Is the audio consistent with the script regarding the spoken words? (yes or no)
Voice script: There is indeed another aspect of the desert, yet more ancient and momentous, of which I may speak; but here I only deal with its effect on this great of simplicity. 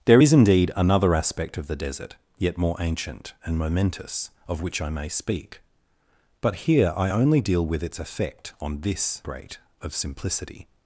yes